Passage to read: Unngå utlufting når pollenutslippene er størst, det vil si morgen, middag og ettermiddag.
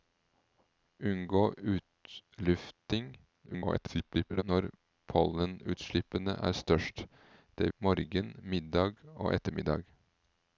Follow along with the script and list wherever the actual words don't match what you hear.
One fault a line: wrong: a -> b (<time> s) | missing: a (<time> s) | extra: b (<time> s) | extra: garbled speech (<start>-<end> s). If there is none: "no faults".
extra: garbled speech (3.5-4.4 s)
missing: vil si (7.7 s)